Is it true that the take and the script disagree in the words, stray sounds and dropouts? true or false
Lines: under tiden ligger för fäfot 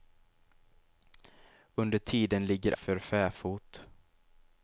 false